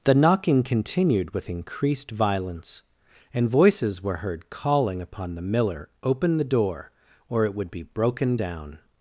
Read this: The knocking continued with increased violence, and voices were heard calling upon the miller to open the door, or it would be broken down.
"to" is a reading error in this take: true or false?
true